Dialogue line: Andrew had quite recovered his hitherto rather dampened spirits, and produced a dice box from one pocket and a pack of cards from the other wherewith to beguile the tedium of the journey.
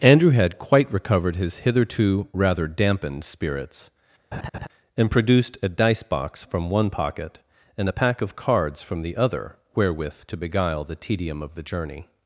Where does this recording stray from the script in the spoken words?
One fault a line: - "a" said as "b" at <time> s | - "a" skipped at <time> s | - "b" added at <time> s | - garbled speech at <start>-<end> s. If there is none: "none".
none